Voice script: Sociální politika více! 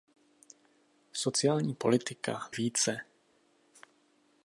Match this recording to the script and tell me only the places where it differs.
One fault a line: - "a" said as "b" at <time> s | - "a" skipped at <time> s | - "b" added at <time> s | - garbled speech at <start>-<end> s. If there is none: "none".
none